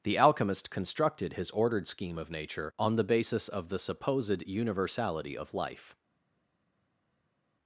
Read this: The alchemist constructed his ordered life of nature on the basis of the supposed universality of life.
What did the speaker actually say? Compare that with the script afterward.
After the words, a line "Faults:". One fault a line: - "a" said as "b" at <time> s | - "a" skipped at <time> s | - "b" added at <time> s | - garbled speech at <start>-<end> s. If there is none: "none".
The alchemist constructed his ordered scheme of nature on the basis of the supposed universality of life.
Faults:
- "life" said as "scheme" at 1.9 s